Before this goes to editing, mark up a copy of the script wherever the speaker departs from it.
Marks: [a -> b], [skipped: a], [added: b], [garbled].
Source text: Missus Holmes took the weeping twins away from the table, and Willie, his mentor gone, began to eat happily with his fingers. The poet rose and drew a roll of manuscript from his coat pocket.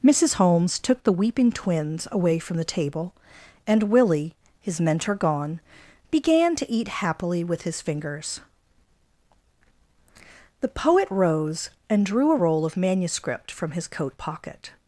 Missus Holmes took the weeping twins away from the table, and Willie, his mentor gone, began to eat happily with his fingers. The poet rose and drew a roll of manuscript from his coat pocket.